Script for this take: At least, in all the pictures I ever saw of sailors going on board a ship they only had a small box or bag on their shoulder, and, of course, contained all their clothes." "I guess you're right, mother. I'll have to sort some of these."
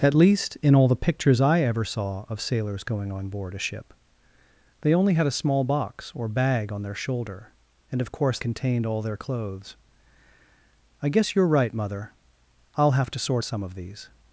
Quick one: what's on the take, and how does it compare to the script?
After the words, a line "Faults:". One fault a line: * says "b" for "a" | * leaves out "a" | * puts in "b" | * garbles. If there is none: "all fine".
At least, in all the pictures I ever saw of sailors going on board a ship they only had a small box or bag on their shoulder, and, of course, contained all their clothes." "I guess you're right, mother. I'll have to sort some of these."
Faults:
all fine